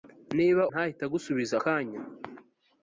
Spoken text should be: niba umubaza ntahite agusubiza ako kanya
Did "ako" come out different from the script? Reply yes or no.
yes